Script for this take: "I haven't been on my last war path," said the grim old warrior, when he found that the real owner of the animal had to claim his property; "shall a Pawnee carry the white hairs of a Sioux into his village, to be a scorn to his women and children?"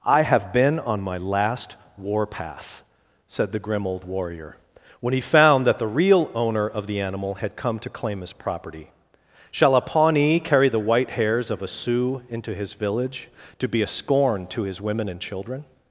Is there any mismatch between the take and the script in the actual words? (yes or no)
yes